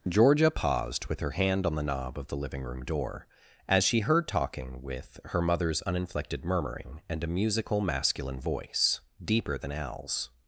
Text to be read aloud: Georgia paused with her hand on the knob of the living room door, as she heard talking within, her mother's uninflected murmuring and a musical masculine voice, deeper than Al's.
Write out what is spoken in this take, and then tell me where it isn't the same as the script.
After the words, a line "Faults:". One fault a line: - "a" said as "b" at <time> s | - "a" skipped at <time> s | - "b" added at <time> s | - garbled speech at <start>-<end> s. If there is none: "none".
Georgia paused with her hand on the knob of the living room door, as she heard talking with, her mother's uninflected murmuring and a musical masculine voice, deeper than Al's.
Faults:
- "within" said as "with" at 4.8 s